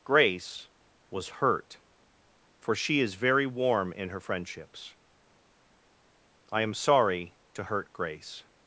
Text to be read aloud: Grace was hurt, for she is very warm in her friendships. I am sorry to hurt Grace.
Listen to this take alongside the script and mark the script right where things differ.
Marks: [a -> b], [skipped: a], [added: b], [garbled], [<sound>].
Grace was hurt, for she is very warm in her friendships. I am sorry to hurt Grace.